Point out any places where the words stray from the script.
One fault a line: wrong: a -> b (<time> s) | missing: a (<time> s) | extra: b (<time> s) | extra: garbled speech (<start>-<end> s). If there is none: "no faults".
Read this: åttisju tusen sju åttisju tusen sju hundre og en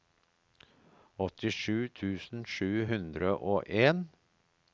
missing: åttisju tusen sju (2.7 s)